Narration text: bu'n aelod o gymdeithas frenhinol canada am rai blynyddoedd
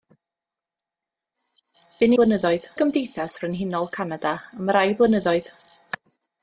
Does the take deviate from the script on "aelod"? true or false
true